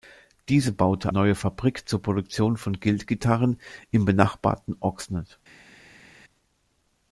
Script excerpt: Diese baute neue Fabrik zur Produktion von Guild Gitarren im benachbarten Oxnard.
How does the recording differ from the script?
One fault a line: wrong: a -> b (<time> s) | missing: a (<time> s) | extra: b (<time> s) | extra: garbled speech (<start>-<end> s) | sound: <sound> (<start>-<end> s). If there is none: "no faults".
no faults